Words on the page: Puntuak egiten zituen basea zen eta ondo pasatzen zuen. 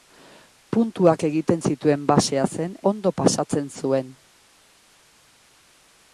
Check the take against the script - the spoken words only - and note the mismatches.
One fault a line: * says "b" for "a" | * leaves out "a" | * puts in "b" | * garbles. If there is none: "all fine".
* leaves out "eta"